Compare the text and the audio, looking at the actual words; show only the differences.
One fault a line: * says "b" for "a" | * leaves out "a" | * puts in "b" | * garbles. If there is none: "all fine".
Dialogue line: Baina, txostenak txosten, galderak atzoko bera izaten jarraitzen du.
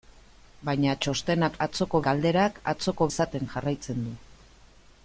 * says "atzoko" for "txosten"
* leaves out "bera"